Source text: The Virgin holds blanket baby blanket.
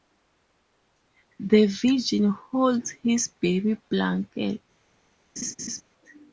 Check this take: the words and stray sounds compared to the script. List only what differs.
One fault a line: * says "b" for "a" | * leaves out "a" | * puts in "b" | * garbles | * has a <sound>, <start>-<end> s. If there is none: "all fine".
* says "his" for "blanket"
* has a laugh, 5.4-5.8 s